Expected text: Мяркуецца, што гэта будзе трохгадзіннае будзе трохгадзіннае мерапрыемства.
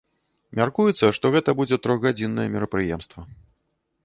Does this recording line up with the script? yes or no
no